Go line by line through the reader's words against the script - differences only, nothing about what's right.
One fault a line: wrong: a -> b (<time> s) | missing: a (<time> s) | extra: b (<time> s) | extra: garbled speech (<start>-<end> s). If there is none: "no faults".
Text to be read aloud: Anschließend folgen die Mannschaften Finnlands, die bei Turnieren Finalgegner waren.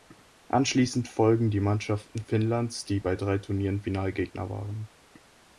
extra: drei (3.2 s)